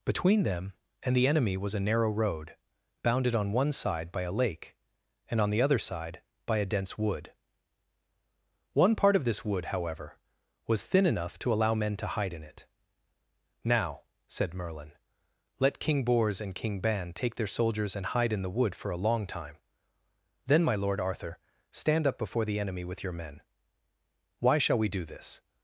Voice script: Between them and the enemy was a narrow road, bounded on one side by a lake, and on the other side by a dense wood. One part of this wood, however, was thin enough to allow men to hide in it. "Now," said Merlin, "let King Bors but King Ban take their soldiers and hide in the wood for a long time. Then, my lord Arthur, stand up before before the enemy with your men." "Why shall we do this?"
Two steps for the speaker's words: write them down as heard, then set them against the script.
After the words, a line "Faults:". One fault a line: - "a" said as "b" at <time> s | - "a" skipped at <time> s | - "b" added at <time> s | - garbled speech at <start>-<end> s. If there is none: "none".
Between them and the enemy was a narrow road, bounded on one side by a lake, and on the other side by a dense wood. One part of this wood, however, was thin enough to allow men to hide in it. "Now," said Merlin, "let King Bors and King Ban take their soldiers and hide in the wood for a long time. Then, my lord Arthur, stand up before the enemy with your men." "Why shall we do this?"
Faults:
- "but" said as "and" at 16.4 s
- "before" skipped at 22.4 s